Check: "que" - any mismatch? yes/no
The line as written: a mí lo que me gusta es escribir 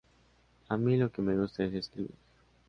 no